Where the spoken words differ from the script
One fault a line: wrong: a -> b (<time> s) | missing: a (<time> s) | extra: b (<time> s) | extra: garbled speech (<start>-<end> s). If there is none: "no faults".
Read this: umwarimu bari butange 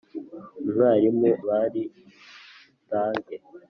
no faults